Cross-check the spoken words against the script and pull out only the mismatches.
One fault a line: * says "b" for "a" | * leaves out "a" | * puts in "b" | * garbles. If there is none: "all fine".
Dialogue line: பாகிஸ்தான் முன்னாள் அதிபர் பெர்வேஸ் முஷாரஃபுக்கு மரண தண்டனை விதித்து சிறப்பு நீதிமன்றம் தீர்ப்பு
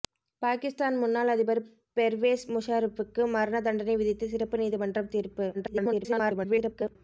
* garbles